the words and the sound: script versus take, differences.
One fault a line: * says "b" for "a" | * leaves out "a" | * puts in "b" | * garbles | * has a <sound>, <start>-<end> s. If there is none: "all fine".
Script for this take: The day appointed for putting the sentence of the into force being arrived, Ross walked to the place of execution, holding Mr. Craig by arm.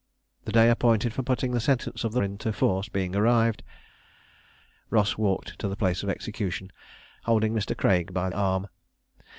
all fine